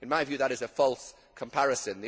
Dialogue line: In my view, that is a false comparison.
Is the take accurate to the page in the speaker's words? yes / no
yes